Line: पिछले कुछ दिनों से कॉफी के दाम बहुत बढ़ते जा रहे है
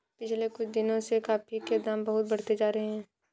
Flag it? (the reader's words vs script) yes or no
no